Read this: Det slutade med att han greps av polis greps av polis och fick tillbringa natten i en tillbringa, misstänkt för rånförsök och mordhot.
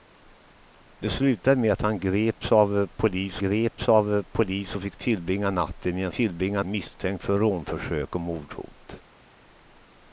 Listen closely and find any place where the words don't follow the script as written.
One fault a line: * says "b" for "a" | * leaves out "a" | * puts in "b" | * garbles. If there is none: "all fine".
all fine